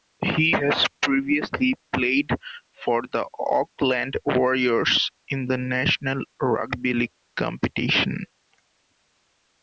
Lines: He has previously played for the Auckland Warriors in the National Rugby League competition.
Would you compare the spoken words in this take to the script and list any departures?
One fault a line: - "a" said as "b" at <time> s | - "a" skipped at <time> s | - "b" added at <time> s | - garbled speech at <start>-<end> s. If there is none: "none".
none